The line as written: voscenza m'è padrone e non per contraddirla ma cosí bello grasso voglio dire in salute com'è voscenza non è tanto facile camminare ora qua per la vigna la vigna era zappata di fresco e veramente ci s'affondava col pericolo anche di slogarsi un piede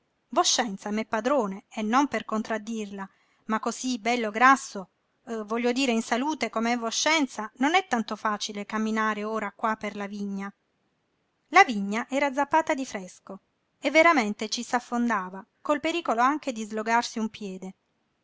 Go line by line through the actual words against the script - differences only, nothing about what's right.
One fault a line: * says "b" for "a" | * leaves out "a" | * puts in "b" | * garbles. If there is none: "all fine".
all fine